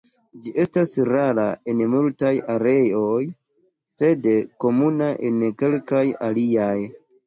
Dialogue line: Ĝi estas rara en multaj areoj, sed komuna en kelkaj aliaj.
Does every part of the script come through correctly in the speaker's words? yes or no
yes